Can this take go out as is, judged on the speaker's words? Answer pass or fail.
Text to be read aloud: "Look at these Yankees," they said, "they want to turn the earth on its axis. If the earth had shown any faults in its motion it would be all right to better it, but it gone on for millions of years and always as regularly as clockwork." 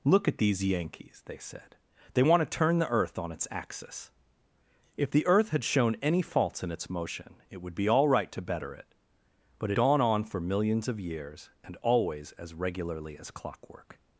pass